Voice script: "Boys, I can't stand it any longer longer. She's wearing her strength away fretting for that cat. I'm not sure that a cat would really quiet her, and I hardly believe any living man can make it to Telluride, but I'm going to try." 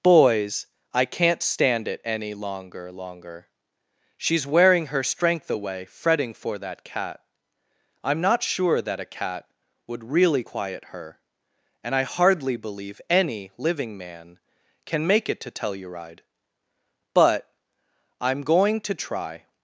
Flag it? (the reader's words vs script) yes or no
no